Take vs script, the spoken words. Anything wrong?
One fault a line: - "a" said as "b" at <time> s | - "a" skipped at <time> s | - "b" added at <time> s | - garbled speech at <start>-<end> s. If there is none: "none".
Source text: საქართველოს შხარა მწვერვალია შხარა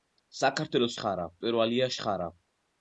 none